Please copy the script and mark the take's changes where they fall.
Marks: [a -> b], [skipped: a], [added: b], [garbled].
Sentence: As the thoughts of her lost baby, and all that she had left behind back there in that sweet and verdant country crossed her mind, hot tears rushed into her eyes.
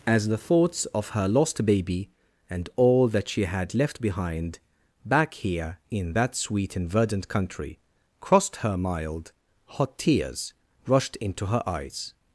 As the thoughts of her lost baby, and all that she had left behind back [there -> here] in that sweet and verdant country crossed her [mind, -> mild] hot tears rushed into her eyes.